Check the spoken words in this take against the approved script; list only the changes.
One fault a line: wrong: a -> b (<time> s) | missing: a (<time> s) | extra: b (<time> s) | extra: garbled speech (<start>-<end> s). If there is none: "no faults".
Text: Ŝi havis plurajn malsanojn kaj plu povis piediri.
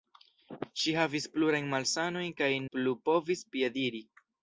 no faults